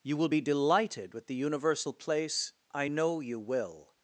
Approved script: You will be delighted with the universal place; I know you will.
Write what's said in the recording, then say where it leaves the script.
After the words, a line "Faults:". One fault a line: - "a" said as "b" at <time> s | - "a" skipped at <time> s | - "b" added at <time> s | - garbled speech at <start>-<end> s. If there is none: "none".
You will be delighted with the universal place; I know you will.
Faults:
none